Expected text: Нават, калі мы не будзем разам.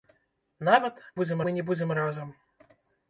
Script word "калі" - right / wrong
wrong